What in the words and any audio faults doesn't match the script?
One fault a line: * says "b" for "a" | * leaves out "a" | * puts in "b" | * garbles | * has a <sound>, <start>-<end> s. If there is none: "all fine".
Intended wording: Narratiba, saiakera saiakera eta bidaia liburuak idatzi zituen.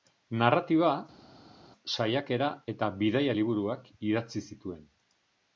* leaves out "saiakera"